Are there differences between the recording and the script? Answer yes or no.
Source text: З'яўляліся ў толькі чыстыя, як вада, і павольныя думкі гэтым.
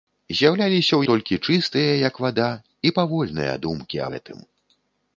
no